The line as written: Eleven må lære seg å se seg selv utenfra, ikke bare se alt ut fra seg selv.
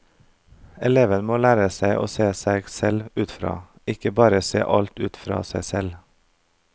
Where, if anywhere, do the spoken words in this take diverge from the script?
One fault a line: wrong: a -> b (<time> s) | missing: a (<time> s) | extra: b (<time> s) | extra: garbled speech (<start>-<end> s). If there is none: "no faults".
no faults